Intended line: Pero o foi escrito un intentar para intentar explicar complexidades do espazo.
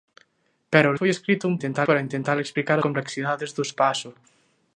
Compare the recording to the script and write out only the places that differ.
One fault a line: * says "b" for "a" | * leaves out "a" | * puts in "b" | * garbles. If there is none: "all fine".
all fine